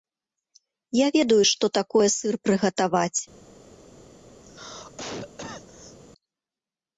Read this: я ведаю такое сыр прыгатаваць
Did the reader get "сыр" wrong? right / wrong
right